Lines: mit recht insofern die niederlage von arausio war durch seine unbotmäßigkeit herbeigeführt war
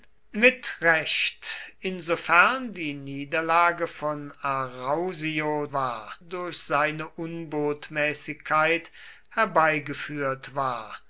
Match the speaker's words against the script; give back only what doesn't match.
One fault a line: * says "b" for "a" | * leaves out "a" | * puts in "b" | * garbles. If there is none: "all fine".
all fine